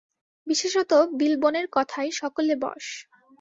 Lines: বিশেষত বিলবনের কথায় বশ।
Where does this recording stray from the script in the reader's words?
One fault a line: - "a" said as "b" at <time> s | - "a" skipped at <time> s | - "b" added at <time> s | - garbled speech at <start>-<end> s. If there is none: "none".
- "সকলে" added at 2.1 s